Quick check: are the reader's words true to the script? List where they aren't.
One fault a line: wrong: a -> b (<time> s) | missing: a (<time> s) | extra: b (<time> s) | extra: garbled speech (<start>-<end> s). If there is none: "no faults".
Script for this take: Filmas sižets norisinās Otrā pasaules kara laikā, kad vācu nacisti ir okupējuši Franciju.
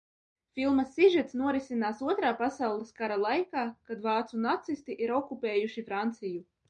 no faults